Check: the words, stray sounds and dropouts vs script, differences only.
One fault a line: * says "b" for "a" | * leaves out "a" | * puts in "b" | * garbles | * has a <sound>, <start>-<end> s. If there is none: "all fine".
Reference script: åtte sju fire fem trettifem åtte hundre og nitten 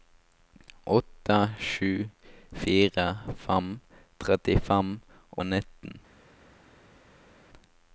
* leaves out "åtte hundre"